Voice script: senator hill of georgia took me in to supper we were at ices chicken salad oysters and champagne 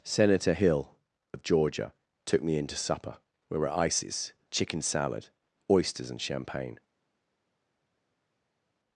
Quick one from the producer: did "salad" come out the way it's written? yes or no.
yes